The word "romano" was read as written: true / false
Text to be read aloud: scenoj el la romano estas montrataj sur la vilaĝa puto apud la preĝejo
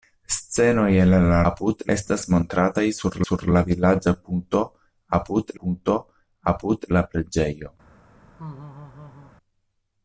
false